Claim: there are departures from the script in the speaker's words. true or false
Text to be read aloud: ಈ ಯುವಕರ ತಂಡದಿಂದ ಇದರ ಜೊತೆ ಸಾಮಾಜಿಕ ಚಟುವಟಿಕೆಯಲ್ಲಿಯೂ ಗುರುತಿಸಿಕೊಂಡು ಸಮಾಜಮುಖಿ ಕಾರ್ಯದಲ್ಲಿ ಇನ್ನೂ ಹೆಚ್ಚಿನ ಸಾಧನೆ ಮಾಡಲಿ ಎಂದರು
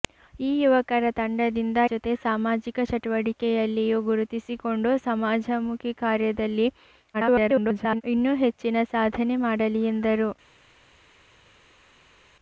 true